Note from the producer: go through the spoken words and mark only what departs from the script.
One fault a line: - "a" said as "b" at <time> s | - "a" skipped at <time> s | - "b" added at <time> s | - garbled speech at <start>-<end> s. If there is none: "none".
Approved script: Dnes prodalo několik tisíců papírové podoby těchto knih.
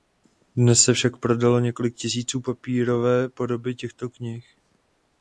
- "se však" added at 0.8 s